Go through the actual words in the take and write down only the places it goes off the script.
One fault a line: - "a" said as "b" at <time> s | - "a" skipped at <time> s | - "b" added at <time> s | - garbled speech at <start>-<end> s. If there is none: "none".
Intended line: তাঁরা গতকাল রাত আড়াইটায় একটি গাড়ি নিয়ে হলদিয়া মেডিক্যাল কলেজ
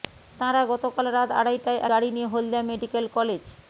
- "একটি" skipped at 1.8 s